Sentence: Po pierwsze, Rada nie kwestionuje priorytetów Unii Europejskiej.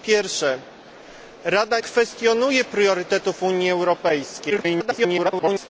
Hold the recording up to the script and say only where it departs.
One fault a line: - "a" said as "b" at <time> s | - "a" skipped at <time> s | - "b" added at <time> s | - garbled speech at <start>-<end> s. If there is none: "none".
- "nie" skipped at 1.8 s
- garbled speech at 4.5-5.7 s